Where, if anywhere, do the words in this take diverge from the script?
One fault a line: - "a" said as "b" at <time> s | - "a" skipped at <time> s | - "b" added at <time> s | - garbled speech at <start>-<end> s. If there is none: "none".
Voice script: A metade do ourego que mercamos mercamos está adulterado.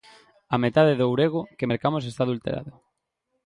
- "mercamos" skipped at 2.0 s